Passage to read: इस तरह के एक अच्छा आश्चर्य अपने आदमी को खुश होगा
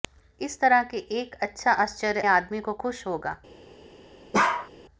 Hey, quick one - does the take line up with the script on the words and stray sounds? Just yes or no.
no